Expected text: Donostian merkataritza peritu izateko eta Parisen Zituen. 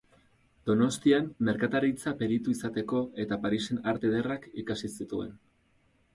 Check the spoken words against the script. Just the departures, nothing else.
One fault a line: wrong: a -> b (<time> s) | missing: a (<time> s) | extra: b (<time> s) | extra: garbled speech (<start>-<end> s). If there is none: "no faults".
extra: Arte Ederrak ikasi (3.9 s)